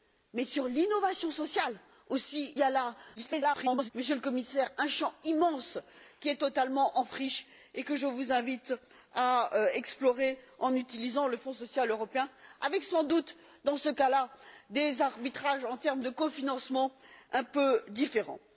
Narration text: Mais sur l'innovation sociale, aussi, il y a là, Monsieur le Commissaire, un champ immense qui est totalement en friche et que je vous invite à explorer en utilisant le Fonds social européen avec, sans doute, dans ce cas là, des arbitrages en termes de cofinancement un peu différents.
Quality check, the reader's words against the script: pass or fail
fail